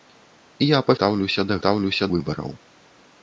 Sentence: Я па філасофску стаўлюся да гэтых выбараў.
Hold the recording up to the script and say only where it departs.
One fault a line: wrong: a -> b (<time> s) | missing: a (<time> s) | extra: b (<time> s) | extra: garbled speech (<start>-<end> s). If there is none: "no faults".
missing: філасофску (0.9 s)
wrong: гэтых -> стаўлюся (1.6 s)